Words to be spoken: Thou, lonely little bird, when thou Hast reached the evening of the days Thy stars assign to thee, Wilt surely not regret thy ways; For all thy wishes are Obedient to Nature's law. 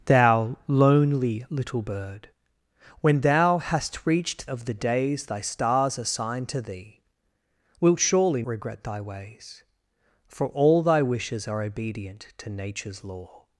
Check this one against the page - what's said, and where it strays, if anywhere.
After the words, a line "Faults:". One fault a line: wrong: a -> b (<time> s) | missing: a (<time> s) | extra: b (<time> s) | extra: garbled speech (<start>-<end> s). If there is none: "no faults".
Thou, lonely little bird, when thou Hast reached of the days Thy stars assign to thee, Wilt surely regret thy ways; For all thy wishes are Obedient to Nature's law.
Faults:
missing: the evening (4.5 s)
missing: not (8.4 s)